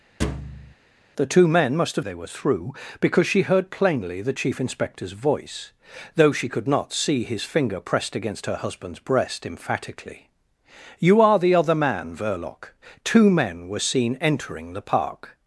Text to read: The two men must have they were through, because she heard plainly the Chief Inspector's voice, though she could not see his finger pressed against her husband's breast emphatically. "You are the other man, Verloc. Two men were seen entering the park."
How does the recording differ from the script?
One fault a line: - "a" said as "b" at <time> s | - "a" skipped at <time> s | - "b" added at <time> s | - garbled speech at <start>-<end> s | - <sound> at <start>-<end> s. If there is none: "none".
- thud at 0.2-0.7 s